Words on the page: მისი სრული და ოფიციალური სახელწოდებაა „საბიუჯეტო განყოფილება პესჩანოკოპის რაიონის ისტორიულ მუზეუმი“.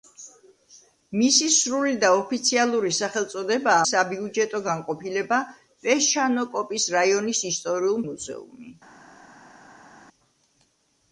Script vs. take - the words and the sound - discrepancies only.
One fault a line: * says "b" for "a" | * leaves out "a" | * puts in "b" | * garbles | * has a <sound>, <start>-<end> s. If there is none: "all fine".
all fine